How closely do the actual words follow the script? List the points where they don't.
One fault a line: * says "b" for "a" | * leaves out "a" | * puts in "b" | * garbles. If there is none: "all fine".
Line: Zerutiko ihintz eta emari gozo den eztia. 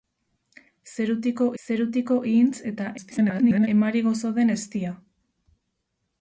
* puts in "zerutiko"
* garbles